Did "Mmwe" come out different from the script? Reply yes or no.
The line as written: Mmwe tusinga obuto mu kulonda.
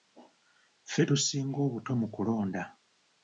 yes